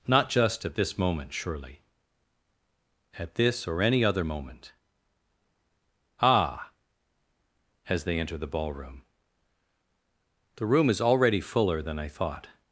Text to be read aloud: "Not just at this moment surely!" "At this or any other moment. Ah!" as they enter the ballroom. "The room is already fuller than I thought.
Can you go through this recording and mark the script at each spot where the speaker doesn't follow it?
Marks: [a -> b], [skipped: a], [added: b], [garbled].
"Not just at this moment surely!" "At this or any other moment. Ah!" as they enter the ballroom. "The room is already fuller than I thought.